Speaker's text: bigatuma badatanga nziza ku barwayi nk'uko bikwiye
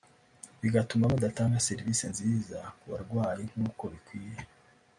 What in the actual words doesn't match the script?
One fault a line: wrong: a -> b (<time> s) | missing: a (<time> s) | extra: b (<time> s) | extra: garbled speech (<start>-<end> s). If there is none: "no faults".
extra: serivisi (1.7 s)